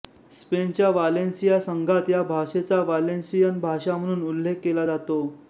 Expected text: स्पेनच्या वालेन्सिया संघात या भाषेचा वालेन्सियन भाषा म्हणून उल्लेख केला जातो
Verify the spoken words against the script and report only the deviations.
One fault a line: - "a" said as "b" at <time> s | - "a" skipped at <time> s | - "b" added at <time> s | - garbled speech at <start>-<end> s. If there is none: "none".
none